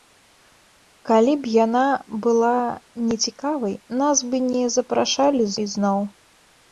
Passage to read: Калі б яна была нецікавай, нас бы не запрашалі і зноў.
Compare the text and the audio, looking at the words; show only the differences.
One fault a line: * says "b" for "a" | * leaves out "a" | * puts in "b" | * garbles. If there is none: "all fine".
all fine